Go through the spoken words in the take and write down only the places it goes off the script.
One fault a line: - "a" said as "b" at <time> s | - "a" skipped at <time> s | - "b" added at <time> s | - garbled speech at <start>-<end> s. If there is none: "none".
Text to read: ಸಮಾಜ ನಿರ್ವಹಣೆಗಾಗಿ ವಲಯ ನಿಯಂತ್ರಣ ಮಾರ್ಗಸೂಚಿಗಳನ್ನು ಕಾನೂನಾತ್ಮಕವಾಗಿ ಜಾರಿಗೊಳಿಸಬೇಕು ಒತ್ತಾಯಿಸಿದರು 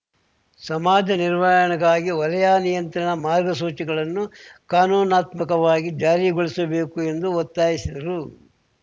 - "ಎಂದು" added at 7.0 s